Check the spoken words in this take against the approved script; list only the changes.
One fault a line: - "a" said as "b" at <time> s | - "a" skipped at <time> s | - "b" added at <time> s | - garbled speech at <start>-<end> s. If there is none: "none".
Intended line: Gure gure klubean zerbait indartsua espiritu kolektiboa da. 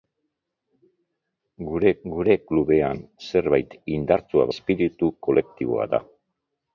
none